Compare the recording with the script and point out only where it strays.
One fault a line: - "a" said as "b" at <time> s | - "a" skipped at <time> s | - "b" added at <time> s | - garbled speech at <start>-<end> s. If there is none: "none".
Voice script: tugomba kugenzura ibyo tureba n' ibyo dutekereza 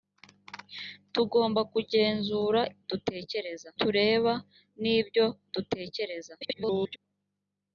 - "ibyo" said as "dutekereza" at 2.9 s
- garbled speech at 6.4-7.0 s